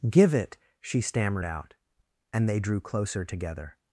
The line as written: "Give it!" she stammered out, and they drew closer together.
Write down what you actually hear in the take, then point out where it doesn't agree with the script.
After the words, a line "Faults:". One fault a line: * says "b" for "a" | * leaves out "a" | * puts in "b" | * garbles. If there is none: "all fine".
"Give it!" she stammered out, and they drew closer together.
Faults:
all fine